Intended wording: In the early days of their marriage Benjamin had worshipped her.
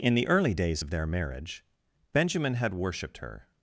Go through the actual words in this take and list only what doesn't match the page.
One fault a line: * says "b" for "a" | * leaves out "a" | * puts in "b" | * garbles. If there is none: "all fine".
all fine